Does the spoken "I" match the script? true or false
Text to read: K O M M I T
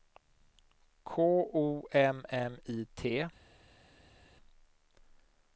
true